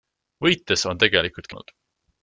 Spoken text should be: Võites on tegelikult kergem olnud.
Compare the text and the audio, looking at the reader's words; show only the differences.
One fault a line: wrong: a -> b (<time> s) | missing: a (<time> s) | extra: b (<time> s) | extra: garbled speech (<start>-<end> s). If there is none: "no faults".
missing: kergem (1.5 s)